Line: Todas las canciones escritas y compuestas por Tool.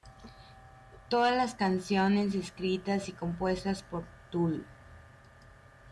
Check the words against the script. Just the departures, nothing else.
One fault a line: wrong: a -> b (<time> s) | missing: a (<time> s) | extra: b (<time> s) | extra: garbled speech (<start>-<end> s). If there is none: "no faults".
no faults